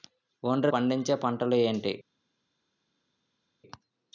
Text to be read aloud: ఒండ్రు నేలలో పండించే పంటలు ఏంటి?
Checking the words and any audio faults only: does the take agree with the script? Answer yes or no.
no